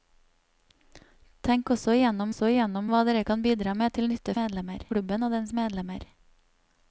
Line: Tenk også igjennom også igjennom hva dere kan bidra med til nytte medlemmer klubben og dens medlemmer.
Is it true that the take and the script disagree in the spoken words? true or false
false